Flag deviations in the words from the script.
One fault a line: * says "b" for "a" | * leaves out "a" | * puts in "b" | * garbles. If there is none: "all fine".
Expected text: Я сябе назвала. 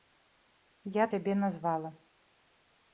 all fine